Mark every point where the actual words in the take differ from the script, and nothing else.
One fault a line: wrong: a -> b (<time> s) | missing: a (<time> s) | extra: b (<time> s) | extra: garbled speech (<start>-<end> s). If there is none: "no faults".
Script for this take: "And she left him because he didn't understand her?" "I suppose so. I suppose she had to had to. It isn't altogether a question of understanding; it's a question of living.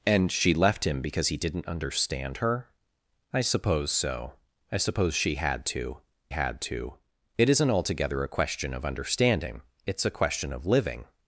no faults